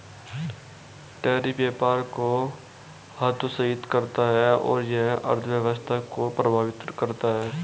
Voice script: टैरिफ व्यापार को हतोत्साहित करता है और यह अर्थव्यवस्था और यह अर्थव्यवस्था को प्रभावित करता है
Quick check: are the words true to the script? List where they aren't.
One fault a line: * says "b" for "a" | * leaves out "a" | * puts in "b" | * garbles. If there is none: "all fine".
* leaves out "और यह अर्थव्यवस्था"